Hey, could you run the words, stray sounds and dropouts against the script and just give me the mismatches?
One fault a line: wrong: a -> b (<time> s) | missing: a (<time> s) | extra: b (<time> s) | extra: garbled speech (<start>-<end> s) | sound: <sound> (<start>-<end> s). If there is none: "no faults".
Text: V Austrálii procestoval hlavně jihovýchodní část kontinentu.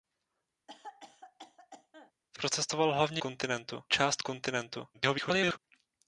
sound: cough (0.7-2.1 s)
missing: Austrálii (2.4 s)
wrong: jihovýchodní -> kontinentu (3.2 s)
extra: garbled speech (4.9-5.6 s)